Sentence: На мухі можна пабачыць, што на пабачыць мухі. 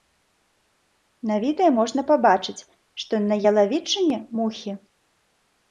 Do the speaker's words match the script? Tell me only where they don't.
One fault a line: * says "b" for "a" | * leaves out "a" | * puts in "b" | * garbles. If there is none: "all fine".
* says "відэа" for "мухі"
* says "ялавічыне" for "пабачыць"